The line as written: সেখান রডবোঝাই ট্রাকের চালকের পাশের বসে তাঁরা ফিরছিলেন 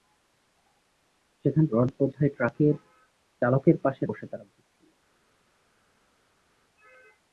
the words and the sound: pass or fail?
pass